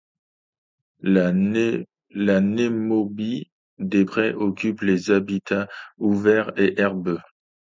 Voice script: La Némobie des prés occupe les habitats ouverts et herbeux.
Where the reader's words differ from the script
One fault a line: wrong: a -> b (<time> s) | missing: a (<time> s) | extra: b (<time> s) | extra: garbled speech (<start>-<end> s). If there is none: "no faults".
no faults